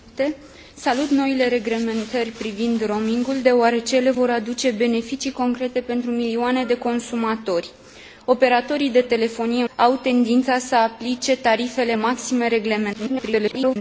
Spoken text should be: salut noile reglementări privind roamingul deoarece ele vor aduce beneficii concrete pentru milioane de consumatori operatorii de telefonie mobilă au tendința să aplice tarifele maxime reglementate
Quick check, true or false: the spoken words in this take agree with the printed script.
false